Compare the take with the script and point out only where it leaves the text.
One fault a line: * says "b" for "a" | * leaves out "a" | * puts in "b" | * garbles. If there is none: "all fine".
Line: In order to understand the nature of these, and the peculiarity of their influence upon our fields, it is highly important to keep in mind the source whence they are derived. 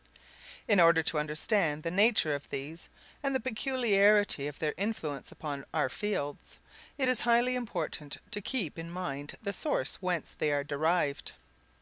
all fine